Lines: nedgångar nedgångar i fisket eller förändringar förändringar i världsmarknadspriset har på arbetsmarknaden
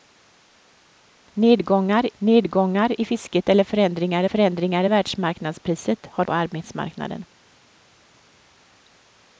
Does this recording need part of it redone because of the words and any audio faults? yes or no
no